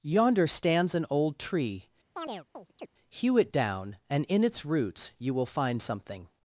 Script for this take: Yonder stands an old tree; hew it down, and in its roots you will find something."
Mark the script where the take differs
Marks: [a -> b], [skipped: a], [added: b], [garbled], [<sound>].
Yonder stands an old tree; [chirp] hew it down, and in its roots you will find something."